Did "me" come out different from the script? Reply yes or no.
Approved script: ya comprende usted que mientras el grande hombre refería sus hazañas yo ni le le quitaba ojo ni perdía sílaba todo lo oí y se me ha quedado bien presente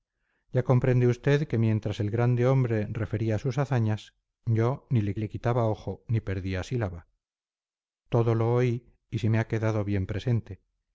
no